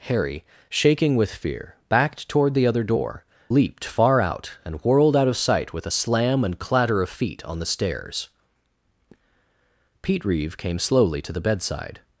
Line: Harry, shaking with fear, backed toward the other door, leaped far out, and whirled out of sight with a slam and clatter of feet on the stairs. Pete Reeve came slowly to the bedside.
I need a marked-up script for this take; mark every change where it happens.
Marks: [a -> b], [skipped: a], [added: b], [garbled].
Harry, shaking with fear, backed toward the other door, leaped far out, and whirled out of sight with a slam and clatter of feet on the stairs. Pete Reeve came slowly to the bedside.